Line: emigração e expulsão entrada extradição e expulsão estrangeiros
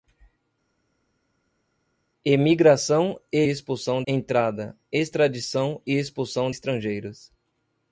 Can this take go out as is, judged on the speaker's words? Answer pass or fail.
pass